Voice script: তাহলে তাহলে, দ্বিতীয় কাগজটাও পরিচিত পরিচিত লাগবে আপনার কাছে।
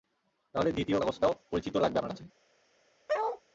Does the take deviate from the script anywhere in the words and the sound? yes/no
yes